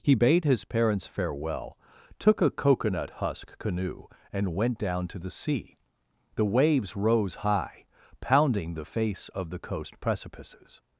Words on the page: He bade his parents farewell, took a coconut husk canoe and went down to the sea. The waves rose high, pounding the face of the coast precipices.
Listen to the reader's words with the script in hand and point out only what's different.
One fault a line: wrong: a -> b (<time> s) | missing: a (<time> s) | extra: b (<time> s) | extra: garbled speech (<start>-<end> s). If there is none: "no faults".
no faults